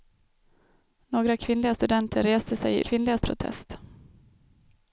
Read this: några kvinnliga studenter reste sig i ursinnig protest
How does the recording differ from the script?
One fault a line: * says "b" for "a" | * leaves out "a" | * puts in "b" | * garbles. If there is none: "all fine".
* says "kvinnliga" for "ursinnig"